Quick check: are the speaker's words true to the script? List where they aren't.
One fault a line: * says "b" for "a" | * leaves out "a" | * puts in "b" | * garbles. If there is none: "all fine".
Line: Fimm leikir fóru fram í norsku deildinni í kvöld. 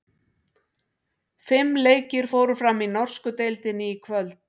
all fine